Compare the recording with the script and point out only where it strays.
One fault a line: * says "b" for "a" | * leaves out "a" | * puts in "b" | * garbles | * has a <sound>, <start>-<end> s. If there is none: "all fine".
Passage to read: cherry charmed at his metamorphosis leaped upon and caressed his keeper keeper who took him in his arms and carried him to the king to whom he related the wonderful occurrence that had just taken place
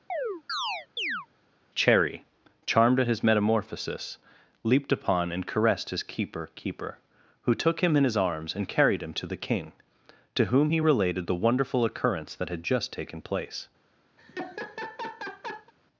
* has a chirp, 0.1-1.3 s
* has a laugh, 14.2-15.7 s